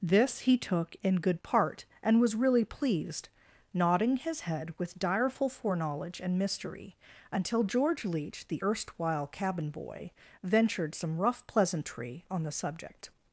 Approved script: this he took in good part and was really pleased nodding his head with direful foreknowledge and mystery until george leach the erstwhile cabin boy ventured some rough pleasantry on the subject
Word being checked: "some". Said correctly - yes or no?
yes